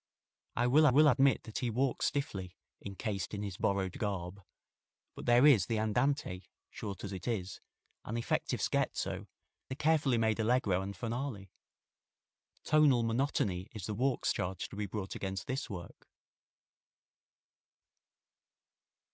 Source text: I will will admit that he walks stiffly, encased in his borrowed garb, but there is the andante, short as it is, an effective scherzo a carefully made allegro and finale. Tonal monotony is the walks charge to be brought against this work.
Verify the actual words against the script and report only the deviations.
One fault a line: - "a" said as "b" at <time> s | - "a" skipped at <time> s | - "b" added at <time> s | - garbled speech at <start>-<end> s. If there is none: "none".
none